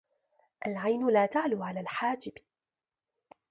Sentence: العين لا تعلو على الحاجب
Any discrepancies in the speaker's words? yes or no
no